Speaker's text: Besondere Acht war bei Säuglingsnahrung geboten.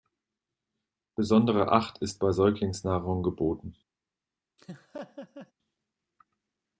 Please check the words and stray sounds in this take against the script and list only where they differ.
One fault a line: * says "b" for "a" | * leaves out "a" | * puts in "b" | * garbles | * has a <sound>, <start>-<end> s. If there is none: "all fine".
* says "ist" for "war"
* has a laugh, 4.6-5.5 s